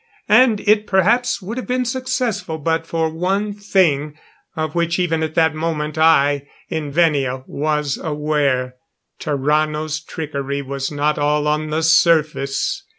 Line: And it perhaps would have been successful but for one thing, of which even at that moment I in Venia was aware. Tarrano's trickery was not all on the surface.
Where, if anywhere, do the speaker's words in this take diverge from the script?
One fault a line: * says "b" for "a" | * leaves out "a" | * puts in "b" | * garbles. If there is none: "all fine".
all fine